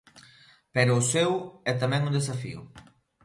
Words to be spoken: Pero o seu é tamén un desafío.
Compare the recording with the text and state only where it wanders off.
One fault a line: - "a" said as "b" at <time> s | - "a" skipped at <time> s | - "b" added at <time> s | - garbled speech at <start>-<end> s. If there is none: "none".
none